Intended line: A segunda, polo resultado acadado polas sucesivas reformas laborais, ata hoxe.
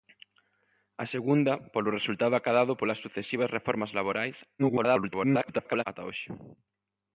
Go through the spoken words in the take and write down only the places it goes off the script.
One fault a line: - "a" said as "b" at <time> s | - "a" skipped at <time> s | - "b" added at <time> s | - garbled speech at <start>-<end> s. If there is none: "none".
- garbled speech at 4.6-5.8 s